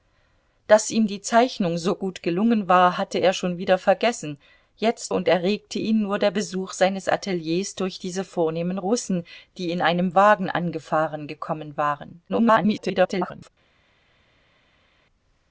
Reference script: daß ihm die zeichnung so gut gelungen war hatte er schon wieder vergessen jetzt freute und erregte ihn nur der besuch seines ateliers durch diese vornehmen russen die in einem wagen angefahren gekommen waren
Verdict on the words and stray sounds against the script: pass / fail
fail